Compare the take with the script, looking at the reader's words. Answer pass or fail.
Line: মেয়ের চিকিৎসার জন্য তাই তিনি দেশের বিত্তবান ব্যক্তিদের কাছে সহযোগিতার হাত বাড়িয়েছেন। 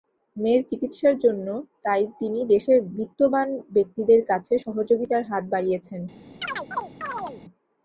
pass